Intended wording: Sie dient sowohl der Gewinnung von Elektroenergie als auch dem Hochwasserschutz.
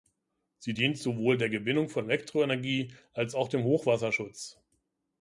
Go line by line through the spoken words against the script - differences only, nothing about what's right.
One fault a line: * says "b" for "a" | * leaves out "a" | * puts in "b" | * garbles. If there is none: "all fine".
all fine